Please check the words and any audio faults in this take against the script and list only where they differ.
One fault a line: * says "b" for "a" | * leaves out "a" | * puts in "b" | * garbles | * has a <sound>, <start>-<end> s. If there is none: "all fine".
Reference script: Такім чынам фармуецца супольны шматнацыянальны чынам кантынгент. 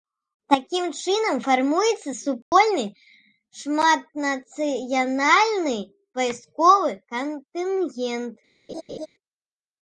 * has a dropout, 2.4-2.5 s
* says "вайсковы" for "чынам"
* has a laugh, 8.7-9.1 s